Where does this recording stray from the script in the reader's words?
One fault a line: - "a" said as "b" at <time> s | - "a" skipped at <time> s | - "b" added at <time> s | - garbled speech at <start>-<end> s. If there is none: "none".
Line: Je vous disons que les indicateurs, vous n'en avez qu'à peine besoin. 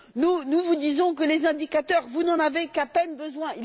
- "Je" said as "Nous" at 0.1 s